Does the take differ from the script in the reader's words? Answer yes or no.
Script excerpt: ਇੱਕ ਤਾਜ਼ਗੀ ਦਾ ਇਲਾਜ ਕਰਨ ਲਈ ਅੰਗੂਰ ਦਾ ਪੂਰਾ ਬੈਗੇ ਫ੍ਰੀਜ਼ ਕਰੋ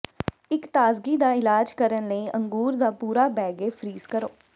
no